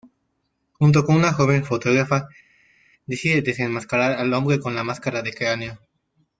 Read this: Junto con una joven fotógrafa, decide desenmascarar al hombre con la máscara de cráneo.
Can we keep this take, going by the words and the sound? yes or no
yes